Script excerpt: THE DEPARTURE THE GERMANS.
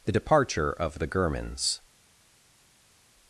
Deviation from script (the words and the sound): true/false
true